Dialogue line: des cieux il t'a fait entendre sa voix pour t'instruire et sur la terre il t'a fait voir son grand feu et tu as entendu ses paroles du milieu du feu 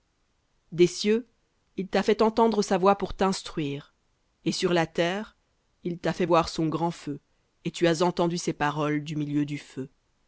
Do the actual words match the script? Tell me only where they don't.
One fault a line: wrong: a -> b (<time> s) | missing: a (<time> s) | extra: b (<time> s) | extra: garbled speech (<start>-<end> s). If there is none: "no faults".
no faults